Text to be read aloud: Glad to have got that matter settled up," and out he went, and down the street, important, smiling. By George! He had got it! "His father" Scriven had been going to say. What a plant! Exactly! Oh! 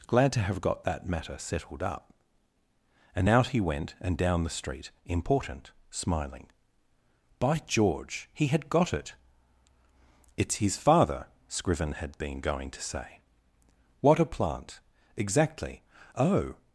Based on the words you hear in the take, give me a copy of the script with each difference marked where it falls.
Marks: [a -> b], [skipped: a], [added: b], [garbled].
Glad to have got that matter settled up," and out he went, and down the street, important, smiling. By George! He had got it! [added: It's] "His father" Scriven had been going to say. What a plant! Exactly! Oh!